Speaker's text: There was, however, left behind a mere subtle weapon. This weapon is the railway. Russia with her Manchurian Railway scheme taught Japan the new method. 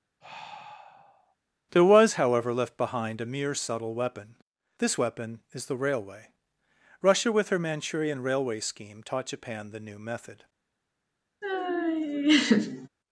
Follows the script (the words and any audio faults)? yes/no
no